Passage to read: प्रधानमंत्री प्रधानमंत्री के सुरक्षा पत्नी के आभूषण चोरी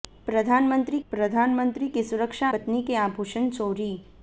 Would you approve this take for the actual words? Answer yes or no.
yes